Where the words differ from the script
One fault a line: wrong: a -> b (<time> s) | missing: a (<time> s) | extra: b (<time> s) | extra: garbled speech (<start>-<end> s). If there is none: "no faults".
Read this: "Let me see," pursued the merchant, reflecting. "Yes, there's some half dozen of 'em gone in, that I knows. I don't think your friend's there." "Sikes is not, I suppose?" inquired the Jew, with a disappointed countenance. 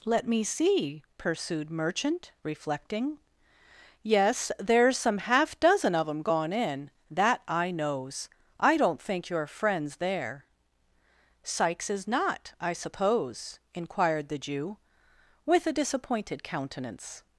missing: the (1.7 s)